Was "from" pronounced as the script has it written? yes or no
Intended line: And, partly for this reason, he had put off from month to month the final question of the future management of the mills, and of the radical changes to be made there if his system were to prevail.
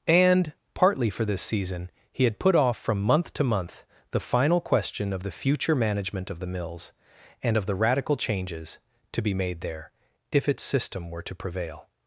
yes